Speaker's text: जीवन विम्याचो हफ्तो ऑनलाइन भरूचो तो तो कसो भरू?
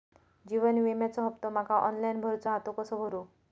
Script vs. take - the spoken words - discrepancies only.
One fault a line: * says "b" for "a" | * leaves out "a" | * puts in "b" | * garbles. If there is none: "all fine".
* puts in "माका"
* says "हा" for "तो"